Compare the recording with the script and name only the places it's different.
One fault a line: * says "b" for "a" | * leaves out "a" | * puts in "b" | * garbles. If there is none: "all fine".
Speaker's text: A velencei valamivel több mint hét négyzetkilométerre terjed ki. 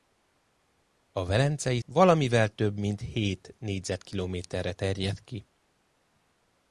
all fine